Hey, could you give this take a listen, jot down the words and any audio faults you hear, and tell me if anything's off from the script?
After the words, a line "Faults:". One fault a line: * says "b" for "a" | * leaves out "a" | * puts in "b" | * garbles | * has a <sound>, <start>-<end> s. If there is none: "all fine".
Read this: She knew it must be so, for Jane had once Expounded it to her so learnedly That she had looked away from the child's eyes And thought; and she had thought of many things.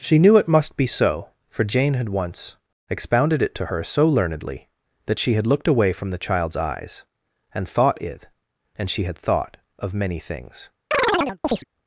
She knew it must be so, for Jane had once Expounded it to her so learnedly That she had looked away from the child's eyes And thought; it and she had thought of many things.
Faults:
* puts in "it"
* has a chirp, 10.9-11.6 s